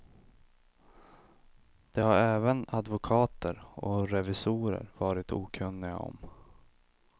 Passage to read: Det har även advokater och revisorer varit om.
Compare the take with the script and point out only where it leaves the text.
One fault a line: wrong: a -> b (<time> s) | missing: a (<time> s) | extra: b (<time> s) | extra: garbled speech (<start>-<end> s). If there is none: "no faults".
extra: okunniga (5.3 s)